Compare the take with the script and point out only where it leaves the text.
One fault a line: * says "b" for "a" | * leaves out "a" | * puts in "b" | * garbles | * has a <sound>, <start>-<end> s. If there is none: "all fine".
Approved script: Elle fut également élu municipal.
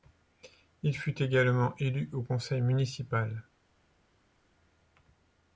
* says "Il" for "Elle"
* puts in "au conseil"